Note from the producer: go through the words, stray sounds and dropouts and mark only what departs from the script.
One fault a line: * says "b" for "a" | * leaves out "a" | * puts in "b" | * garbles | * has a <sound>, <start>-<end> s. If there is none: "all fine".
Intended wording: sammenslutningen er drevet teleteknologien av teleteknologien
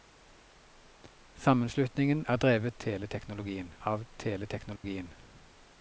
* has a dropout, 4.8-4.8 s